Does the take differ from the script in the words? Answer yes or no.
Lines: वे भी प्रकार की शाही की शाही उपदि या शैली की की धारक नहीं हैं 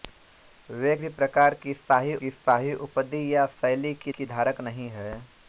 no